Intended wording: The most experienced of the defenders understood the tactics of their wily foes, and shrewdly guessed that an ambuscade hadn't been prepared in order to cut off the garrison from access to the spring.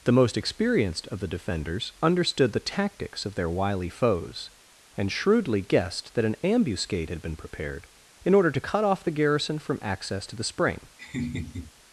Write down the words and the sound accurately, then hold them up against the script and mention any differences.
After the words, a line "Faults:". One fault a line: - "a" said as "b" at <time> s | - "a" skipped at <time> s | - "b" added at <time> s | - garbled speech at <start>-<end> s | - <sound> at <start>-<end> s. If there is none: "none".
The most experienced of the defenders understood the tactics of their wily foes, and shrewdly guessed that an ambuscade had been prepared in order to cut off the garrison from access to the spring.
Faults:
- "hadn't" said as "had" at 7.1 s
- laugh at 11.0-11.7 s